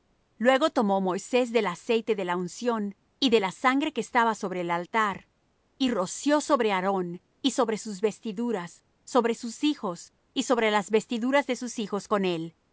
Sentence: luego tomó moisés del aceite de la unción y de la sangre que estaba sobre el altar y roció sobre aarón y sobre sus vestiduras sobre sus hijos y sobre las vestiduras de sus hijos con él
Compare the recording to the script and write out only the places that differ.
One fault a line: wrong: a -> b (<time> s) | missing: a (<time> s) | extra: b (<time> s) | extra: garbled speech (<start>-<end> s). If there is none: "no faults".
no faults